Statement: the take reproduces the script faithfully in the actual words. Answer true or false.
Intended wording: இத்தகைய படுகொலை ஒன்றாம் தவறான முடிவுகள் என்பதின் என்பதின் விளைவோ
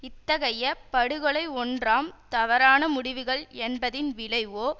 false